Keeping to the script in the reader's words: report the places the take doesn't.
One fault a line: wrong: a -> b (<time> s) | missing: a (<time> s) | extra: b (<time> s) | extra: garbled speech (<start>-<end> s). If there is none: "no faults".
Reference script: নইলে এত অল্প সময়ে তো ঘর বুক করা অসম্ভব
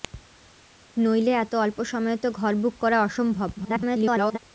extra: garbled speech (3.6-4.4 s)